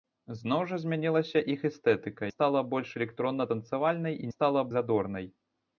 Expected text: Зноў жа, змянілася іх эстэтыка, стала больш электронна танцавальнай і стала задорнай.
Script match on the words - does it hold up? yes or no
yes